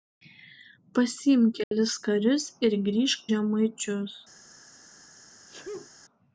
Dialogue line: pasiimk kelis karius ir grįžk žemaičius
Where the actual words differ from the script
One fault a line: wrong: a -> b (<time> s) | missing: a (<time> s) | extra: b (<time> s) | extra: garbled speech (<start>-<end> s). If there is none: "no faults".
no faults